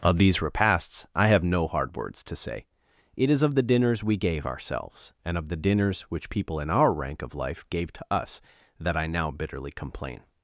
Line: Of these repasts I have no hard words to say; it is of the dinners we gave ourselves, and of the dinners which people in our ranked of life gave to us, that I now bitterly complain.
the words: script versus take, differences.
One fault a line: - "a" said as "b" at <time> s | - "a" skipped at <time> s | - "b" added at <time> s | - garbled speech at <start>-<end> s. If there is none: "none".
- "ranked" said as "rank" at 6.9 s